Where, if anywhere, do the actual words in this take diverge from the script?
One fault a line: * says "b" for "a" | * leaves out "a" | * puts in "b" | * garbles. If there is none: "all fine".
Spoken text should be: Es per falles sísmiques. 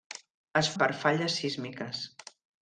all fine